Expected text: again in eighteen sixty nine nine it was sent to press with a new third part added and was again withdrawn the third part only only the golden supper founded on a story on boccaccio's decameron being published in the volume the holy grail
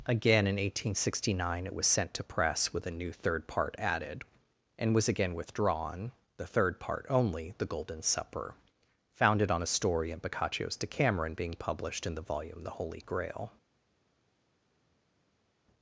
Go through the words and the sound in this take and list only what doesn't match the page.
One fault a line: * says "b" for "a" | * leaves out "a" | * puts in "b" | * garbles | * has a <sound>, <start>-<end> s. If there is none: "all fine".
* leaves out "nine"
* leaves out "only"
* says "in" for "on"